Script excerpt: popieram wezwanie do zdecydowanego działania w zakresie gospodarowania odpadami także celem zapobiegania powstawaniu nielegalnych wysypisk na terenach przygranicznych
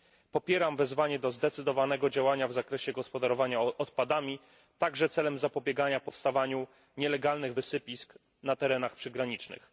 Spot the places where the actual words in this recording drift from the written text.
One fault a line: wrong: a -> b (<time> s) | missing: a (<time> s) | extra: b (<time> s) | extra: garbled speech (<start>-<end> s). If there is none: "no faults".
no faults